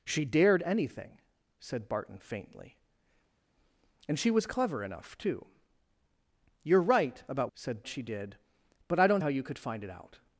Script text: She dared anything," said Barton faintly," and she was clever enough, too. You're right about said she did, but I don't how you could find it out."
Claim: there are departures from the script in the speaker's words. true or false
false